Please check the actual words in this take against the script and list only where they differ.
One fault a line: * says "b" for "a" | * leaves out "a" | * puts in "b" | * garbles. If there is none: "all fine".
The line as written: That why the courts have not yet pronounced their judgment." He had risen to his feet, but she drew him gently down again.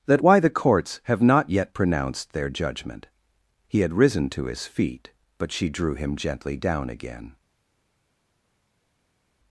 all fine